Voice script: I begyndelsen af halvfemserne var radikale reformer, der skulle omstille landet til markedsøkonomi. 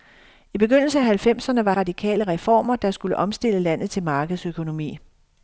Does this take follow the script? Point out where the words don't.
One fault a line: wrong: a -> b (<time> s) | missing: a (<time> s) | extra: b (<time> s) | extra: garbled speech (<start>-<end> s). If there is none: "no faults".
no faults